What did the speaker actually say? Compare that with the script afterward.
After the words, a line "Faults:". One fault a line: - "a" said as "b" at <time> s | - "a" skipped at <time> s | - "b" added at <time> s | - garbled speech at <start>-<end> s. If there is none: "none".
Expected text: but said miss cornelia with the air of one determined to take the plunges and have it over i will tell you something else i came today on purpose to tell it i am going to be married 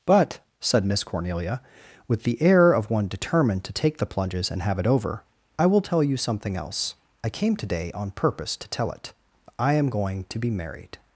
but said miss cornelia with the air of one determined to take the plunges and have it over i will tell you something else i came today on purpose to tell it i am going to be married
Faults:
none